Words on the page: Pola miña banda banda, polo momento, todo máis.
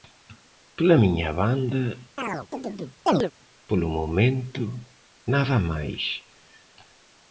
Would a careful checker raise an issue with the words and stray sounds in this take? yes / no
yes